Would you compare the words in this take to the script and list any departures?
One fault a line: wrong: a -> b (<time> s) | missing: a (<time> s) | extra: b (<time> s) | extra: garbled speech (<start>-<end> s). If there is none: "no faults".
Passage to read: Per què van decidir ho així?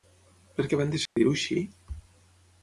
no faults